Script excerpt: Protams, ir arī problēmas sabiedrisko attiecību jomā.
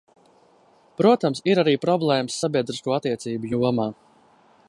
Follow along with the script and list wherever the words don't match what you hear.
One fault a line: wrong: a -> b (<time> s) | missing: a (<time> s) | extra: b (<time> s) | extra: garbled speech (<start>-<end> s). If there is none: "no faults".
no faults